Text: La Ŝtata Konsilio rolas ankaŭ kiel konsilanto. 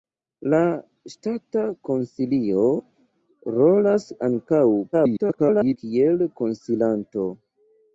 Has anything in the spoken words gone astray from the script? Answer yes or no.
yes